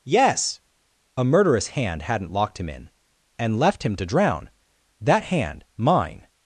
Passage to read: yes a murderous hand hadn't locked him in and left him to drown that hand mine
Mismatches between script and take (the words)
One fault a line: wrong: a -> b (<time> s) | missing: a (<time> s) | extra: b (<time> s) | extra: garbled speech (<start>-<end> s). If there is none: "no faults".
no faults